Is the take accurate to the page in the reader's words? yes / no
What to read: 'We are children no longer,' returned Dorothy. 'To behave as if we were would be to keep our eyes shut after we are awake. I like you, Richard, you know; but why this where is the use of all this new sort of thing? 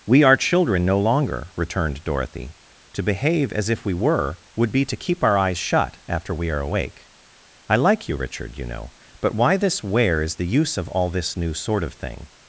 yes